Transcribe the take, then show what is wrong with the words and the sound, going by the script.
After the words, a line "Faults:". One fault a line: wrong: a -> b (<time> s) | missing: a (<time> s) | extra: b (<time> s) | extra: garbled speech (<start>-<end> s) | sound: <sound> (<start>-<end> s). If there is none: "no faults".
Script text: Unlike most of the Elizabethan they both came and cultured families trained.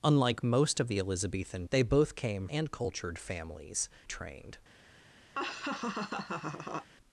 Unlike most of the Elizabethan they both came and cultured families trained.
Faults:
sound: laugh (5.3-6.9 s)